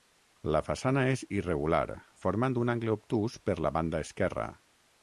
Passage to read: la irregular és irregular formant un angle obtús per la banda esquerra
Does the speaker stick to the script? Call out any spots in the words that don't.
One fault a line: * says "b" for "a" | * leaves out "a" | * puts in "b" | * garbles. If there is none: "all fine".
* says "façana" for "irregular"